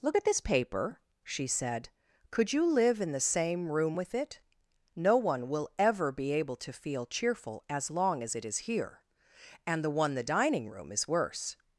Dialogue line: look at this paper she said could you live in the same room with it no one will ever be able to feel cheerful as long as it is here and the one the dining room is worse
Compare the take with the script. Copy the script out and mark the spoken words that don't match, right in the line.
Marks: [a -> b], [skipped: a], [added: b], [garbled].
look at this paper she said could you live in the same room with it no one will ever be able to feel cheerful as long as it is here and the one the dining room is worse